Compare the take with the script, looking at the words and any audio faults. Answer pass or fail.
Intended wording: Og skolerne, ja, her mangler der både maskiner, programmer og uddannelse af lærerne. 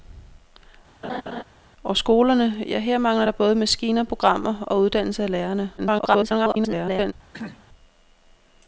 fail